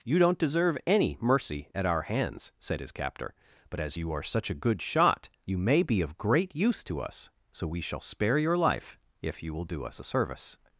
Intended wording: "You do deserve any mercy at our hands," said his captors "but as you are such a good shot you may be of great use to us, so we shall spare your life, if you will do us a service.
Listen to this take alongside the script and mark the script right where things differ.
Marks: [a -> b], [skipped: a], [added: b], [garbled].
"You [do -> don't] deserve any mercy at our hands," said his [captors -> captor] "but as you are such a good shot you may be of great use to us, so we shall spare your life, if you will do us a service.